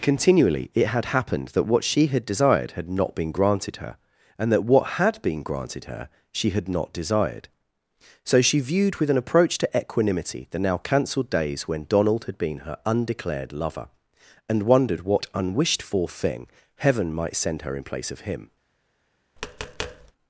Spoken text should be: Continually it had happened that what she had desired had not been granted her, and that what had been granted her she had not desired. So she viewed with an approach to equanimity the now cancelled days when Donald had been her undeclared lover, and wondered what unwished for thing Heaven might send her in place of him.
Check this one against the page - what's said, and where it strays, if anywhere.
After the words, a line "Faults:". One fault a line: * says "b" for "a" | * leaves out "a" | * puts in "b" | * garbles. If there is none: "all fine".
Continually it had happened that what she had desired had not been granted her, and that what had been granted her she had not desired. So she viewed with an approach to equanimity the now cancelled days when Donald had been her undeclared lover, and wondered what unwished for thing Heaven might send her in place of him.
Faults:
all fine